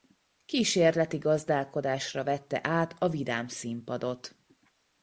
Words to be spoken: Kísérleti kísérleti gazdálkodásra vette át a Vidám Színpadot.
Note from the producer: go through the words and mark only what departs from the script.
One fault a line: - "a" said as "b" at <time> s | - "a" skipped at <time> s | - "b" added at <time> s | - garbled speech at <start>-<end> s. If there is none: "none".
- "kísérleti" skipped at 1.2 s